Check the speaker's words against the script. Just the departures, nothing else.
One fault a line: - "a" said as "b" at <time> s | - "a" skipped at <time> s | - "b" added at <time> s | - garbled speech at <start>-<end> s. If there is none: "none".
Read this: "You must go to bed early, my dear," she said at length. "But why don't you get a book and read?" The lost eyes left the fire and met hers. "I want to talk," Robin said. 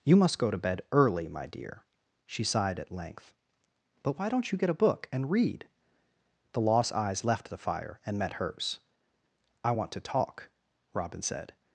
- "said" said as "sighed" at 2.4 s